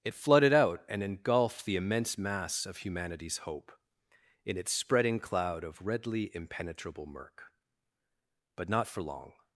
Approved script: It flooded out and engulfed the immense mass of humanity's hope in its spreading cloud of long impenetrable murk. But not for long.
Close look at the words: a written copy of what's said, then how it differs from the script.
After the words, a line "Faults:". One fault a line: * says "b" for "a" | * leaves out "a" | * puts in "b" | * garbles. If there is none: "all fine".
It flooded out and engulfed the immense mass of humanity's hope in its spreading cloud of redly impenetrable murk. But not for long.
Faults:
* says "redly" for "long"